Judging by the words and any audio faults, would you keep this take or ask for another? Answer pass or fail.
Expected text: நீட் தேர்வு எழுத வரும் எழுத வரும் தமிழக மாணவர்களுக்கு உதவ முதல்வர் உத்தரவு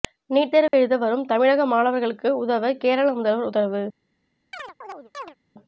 fail